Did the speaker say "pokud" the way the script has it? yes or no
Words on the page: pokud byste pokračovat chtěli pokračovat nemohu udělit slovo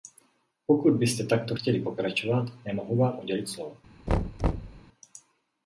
yes